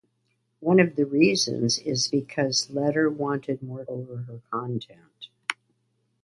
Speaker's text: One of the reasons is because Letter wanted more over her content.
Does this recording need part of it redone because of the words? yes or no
no